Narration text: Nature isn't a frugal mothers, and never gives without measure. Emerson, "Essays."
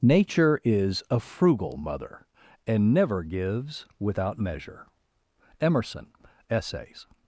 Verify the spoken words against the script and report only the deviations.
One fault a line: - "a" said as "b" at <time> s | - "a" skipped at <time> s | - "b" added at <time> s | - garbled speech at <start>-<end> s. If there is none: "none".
- "isn't" said as "is" at 0.6 s
- "mothers" said as "mother" at 1.8 s